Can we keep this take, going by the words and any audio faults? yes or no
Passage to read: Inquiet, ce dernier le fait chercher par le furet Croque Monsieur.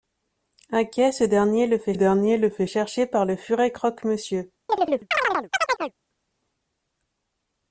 no